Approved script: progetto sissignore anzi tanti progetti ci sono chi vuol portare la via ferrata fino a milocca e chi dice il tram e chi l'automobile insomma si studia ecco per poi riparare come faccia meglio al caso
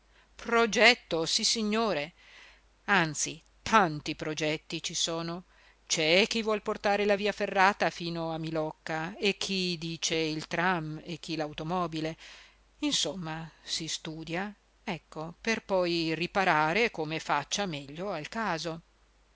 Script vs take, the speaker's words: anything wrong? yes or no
yes